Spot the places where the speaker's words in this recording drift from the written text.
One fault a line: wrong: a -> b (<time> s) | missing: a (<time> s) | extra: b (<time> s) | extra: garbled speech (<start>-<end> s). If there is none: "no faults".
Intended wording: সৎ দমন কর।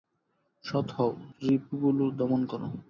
extra: হও রিপুগুলি (0.9 s)